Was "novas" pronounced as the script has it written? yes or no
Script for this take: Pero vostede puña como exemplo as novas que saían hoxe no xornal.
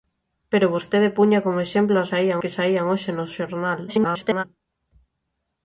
no